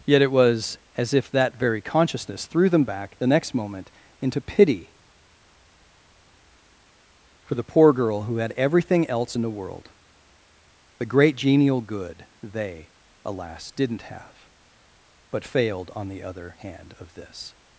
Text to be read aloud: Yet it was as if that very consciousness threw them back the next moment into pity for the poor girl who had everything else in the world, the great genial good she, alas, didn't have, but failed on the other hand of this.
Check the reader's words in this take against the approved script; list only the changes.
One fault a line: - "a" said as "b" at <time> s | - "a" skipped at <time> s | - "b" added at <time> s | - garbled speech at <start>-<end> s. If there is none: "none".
- "she" said as "they" at 12.4 s